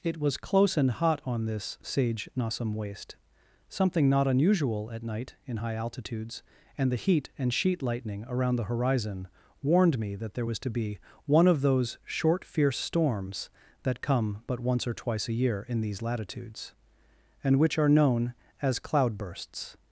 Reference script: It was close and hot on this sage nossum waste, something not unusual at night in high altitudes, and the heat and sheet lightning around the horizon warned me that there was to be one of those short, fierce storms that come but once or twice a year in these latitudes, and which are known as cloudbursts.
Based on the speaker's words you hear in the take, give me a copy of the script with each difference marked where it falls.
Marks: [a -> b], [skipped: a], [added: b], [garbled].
It was close and hot on this sage nossum waste, something not unusual at night in high altitudes, and the heat and sheet lightning around the horizon warned me that there was to be one of those short, fierce storms that come but once or twice a year in these latitudes, and which are known as cloudbursts.